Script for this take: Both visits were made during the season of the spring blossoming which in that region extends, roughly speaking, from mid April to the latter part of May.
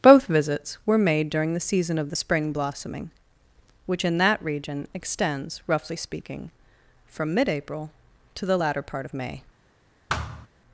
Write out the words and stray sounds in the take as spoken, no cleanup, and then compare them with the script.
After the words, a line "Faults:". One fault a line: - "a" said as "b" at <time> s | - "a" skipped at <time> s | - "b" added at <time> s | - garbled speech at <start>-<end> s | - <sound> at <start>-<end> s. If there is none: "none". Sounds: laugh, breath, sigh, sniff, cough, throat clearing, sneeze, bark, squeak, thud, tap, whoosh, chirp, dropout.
Both visits were made during the season of the spring blossoming which in that region extends, roughly speaking, from mid April to the latter part of May.
Faults:
- thud at 10.1-10.5 s